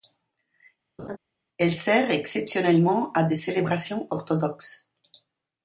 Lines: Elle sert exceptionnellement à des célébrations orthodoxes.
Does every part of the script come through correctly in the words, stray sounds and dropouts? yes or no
no